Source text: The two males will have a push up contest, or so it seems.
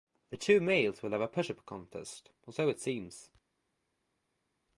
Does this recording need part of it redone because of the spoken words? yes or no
no